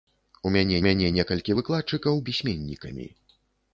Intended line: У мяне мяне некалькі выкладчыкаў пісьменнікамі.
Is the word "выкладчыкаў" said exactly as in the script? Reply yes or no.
yes